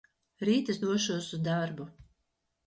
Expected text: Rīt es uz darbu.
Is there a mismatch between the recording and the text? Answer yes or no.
yes